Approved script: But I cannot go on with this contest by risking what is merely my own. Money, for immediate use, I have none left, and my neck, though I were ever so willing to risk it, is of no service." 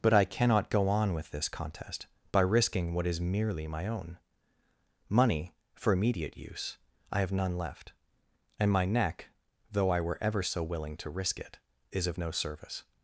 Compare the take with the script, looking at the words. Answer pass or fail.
pass